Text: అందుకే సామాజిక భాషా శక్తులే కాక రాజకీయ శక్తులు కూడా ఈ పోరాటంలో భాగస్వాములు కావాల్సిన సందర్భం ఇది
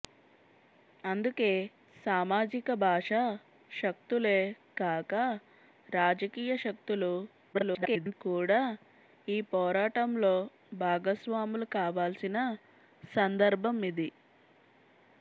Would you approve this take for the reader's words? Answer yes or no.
no